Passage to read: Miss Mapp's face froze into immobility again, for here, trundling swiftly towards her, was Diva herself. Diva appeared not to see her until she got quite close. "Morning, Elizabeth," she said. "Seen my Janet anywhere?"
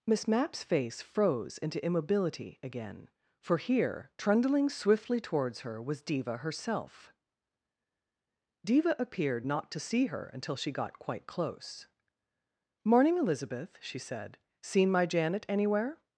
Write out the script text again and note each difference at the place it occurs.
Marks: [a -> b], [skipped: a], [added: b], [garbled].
Miss Mapp's face froze into immobility again, for here, trundling swiftly towards her, was Diva herself. Diva appeared not to see her until she got quite close. "Morning, Elizabeth," she said. "Seen my Janet anywhere?"